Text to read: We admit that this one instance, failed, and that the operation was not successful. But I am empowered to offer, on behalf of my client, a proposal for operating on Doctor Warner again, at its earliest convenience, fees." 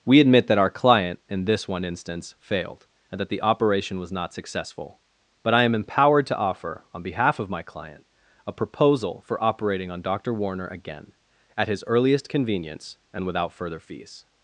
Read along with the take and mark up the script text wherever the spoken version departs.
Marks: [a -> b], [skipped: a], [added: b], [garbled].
We admit that [added: our client in] this one instance, failed, and that the operation was not successful. But I am empowered to offer, on behalf of my client, a proposal for operating on Doctor Warner again, at [its -> his] earliest convenience, [added: and without further] fees."